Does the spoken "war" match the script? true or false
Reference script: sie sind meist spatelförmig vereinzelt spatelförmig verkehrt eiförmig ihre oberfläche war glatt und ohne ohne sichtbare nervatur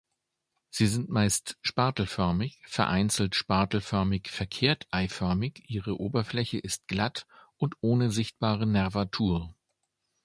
false